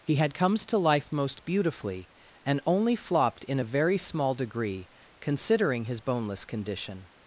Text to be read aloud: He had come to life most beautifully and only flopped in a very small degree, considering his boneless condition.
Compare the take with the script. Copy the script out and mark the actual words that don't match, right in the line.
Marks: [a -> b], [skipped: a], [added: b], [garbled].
He had [come -> comes] to life most beautifully and only flopped in a very small degree, considering his boneless condition.